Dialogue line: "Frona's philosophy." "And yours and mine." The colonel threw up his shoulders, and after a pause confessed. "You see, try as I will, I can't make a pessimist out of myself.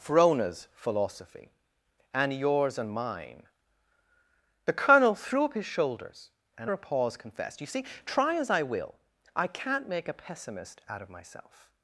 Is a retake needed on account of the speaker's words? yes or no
yes